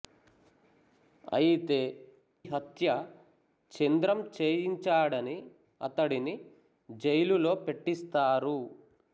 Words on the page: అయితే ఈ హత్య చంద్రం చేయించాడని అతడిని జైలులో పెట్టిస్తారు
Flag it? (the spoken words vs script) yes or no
yes